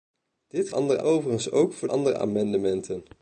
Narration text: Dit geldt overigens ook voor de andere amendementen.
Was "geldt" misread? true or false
true